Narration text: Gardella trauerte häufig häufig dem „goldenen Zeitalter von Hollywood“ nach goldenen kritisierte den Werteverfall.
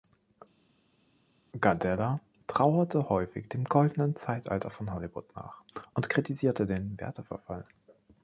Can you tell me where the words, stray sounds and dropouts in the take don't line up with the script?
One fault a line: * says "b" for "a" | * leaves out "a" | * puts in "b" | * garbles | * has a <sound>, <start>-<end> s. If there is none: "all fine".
* leaves out "häufig"
* says "und" for "goldenen"